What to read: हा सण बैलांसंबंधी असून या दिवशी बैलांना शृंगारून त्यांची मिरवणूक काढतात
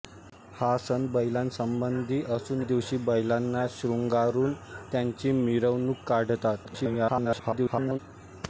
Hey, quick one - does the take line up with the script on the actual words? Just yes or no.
no